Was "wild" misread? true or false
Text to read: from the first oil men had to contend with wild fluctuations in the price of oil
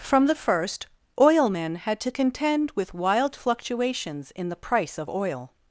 false